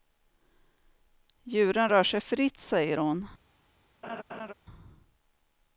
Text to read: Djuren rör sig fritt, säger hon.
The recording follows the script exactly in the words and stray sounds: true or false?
false